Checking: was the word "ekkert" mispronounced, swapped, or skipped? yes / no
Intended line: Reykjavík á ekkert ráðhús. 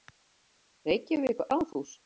yes